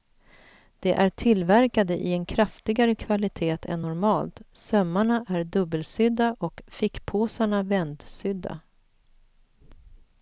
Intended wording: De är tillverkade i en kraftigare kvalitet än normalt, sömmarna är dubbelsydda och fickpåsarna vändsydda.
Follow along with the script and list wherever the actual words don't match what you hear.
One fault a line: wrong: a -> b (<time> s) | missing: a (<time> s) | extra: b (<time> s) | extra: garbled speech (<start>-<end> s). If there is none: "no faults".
no faults